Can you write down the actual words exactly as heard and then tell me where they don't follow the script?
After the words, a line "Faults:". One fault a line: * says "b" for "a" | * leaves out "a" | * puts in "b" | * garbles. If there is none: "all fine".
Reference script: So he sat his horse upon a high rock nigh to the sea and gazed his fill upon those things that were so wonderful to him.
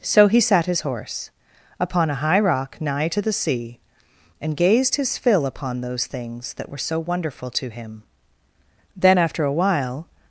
So he sat his horse upon a high rock nigh to the sea and gazed his fill upon those things that were so wonderful to him. Then after a while
Faults:
* puts in "Then after a while"